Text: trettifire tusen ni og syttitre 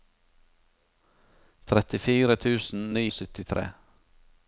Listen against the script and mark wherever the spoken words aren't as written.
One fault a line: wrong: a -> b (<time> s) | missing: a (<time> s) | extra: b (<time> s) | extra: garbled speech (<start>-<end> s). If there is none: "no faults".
no faults